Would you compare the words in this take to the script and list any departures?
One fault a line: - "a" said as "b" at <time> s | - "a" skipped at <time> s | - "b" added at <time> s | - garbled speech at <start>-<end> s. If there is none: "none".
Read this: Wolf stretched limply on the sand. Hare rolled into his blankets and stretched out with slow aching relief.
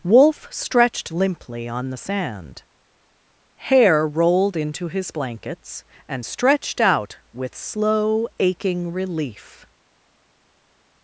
none